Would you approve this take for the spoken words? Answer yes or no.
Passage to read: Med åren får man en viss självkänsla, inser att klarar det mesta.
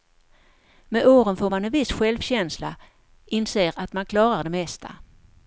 no